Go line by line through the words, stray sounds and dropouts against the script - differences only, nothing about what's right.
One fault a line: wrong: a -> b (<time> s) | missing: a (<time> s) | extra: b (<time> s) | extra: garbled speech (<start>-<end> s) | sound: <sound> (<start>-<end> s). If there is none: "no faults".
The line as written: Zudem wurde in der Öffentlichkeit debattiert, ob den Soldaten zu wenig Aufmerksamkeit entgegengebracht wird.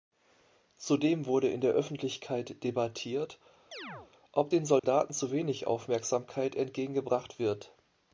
sound: chirp (3.7-4.1 s)
sound: dropout (4.8-4.8 s)